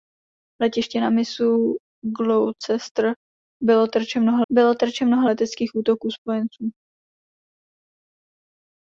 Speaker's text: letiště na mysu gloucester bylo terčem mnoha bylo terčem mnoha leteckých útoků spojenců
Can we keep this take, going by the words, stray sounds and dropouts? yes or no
yes